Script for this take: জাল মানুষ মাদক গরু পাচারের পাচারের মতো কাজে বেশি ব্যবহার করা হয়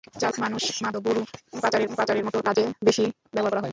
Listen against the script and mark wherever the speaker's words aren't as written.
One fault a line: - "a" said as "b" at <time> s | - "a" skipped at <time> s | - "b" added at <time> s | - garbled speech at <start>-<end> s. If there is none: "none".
none